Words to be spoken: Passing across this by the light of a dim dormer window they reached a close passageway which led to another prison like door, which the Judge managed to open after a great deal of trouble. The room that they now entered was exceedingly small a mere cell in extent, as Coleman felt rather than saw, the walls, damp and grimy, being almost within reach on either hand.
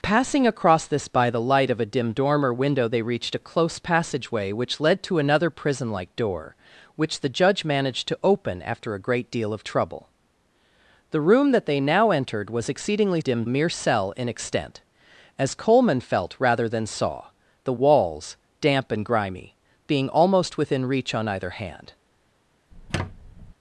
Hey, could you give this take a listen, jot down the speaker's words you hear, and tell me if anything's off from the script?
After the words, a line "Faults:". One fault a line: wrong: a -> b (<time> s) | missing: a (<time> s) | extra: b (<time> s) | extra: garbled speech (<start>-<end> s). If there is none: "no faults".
Passing across this by the light of a dim dormer window they reached a close passageway which led to another prison like door, which the Judge managed to open after a great deal of trouble. The room that they now entered was exceedingly dim a mere cell in extent, as Coleman felt rather than saw, the walls, damp and grimy, being almost within reach on either hand.
Faults:
wrong: small -> dim (13.2 s)